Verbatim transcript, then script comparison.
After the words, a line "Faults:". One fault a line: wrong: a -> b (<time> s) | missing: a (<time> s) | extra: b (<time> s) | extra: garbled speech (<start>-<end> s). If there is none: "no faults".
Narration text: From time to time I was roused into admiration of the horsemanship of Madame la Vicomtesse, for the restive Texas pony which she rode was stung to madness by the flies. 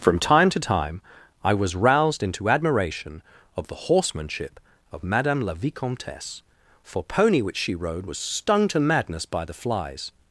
From time to time I was roused into admiration of the horsemanship of Madame la Vicomtesse, for pony which she rode was stung to madness by the flies.
Faults:
missing: the restive Texas (7.0 s)